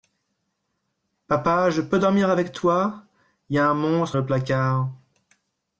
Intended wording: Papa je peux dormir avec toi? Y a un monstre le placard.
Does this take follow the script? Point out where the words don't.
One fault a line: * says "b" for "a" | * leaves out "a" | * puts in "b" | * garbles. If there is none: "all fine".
all fine